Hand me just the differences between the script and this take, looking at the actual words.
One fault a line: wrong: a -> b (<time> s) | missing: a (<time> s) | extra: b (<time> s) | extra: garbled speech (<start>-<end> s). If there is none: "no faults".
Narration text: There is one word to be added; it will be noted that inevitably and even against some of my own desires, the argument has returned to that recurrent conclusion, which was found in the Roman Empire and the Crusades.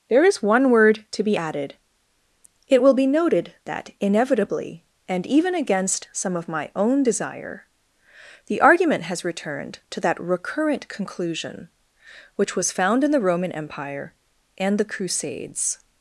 wrong: desires -> desire (7.0 s)